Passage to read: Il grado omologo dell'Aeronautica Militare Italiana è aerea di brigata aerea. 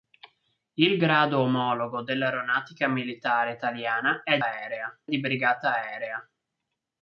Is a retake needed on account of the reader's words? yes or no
no